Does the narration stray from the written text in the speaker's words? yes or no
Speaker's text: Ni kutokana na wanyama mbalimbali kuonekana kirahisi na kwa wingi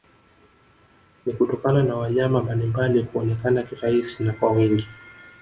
no